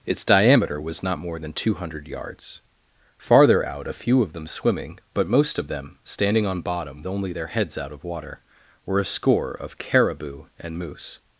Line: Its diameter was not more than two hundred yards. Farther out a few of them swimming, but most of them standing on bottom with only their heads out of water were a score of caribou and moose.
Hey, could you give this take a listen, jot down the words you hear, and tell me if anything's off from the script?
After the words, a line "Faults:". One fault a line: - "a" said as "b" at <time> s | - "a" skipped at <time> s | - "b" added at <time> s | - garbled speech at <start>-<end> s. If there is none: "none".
Its diameter was not more than two hundred yards. Farther out a few of them swimming, but most of them standing on bottom only their heads out of water were a score of caribou and moose.
Faults:
- "with" skipped at 7.0 s